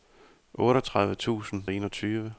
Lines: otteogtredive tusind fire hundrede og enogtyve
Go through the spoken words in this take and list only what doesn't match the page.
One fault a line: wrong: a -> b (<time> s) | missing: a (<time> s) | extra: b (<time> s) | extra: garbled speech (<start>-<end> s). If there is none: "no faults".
missing: fire hundrede (1.6 s)